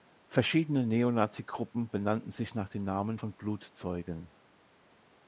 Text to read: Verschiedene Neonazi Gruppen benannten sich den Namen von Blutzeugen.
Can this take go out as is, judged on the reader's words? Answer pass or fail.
fail